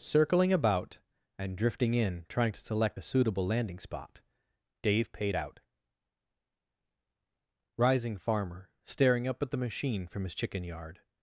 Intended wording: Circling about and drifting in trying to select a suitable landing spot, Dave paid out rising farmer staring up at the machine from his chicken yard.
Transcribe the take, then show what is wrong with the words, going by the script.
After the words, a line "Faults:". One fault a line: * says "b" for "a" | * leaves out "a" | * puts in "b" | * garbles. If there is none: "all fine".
Circling about and drifting in trying to select a suitable landing spot, Dave paid out rising farmer staring up at the machine from his chicken yard.
Faults:
all fine